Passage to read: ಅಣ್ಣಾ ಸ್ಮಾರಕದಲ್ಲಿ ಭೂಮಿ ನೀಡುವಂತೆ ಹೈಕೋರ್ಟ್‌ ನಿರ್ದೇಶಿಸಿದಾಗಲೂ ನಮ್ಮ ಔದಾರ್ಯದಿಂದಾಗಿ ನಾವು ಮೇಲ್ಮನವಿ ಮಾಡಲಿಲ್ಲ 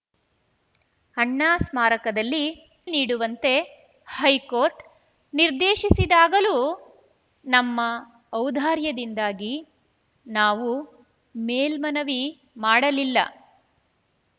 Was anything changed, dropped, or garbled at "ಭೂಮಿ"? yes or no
yes